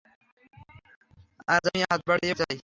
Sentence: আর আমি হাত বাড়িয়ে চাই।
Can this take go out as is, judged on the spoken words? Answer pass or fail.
pass